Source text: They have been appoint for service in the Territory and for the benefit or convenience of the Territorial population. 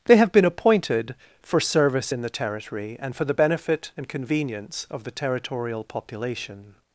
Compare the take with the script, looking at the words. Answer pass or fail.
fail